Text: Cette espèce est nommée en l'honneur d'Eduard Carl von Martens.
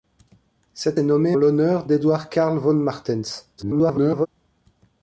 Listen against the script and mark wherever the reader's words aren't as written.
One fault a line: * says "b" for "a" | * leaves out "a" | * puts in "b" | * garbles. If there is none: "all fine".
* leaves out "espèce"
* leaves out "en"
* garbles